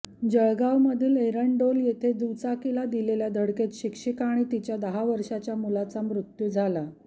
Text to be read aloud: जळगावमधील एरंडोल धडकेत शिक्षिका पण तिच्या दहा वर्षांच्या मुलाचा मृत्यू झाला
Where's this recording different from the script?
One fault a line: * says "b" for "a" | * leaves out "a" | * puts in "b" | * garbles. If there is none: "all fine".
* puts in "येथे दुचाकीला दिलेल्या"
* says "आणि" for "पण"